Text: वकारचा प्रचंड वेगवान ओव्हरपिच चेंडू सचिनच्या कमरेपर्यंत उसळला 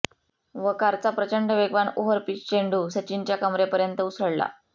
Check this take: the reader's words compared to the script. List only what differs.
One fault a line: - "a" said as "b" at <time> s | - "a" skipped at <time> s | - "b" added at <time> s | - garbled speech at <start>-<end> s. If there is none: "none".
none